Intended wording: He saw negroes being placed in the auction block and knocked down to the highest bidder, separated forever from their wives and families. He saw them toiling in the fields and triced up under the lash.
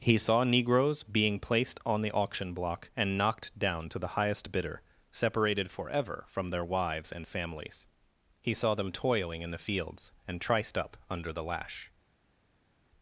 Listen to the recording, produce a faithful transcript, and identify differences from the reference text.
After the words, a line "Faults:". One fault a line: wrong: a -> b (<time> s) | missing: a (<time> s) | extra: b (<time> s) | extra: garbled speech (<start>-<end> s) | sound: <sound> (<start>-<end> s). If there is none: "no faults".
He saw negroes being placed on the auction block and knocked down to the highest bidder, separated forever from their wives and families. He saw them toiling in the fields and triced up under the lash.
Faults:
wrong: in -> on (1.9 s)